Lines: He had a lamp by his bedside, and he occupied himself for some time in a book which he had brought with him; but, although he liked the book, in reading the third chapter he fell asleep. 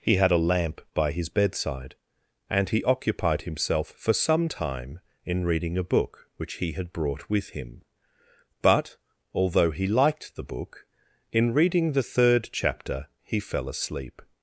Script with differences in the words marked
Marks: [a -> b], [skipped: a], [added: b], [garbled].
He had a lamp by his bedside, and he occupied himself for some time in [added: reading] a book which he had brought with him; but, although he liked the book, in reading the third chapter he fell asleep.